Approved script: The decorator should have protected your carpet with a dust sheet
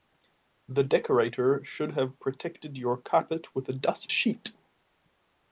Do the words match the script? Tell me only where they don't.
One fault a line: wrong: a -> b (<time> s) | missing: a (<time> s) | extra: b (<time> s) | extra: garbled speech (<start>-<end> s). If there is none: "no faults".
no faults